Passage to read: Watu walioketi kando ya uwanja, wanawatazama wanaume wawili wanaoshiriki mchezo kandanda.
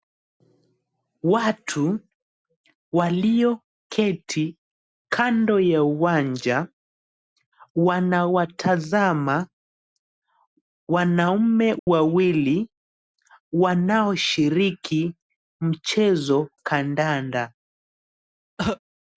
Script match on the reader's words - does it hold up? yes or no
yes